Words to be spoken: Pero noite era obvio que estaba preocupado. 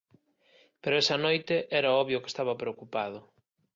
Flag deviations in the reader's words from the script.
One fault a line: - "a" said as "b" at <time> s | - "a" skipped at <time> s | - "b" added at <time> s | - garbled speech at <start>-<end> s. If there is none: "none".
- "esa" added at 1.0 s